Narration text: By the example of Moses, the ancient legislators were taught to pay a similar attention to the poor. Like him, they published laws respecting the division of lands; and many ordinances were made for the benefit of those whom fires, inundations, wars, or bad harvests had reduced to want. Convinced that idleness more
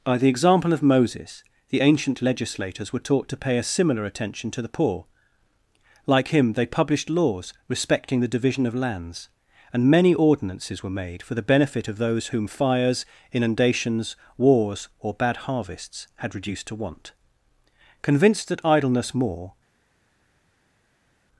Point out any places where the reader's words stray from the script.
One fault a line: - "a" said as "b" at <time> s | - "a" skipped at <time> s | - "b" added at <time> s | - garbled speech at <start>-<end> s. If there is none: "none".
none